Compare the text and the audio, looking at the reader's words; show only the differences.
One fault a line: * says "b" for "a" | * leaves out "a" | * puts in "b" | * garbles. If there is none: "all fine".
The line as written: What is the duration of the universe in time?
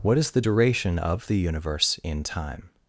all fine